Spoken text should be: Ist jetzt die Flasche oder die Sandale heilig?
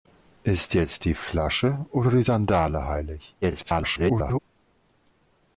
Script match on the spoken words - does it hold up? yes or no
no